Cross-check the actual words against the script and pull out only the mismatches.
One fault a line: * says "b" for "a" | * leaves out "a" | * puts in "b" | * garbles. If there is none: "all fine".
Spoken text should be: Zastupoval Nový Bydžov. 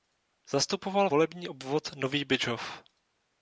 * puts in "volební obvod"